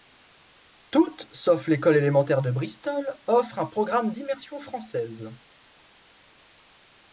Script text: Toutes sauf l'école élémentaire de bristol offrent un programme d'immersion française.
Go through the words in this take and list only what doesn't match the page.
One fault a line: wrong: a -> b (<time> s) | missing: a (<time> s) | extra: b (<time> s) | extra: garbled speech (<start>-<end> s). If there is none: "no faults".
no faults